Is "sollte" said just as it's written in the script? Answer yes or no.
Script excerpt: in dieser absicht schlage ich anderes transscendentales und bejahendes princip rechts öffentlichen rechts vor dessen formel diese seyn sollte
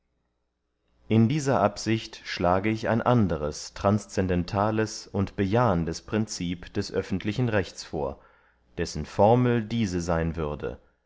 no